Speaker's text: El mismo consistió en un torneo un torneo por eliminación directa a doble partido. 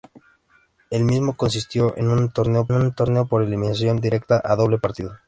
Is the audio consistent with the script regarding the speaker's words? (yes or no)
yes